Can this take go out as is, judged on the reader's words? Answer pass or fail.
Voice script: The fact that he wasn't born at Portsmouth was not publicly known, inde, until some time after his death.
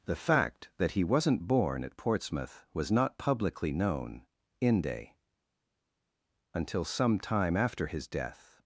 pass